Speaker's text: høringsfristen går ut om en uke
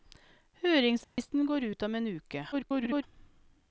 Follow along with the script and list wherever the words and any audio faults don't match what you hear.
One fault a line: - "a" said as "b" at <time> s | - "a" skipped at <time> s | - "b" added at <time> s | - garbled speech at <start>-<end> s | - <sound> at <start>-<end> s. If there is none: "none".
- dropout at 1.0-1.2 s
- garbled speech at 2.5-3.0 s